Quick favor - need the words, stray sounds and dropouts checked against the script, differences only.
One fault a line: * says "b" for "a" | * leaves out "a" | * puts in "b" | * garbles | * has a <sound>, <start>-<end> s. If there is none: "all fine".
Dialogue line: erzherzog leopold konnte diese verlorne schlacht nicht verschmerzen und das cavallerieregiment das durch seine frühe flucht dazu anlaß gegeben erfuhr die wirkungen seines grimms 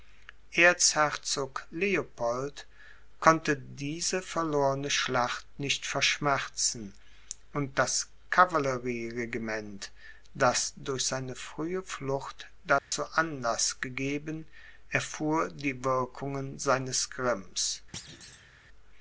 * has a dropout, 12.8-12.9 s
* has a thud, 17.9-18.5 s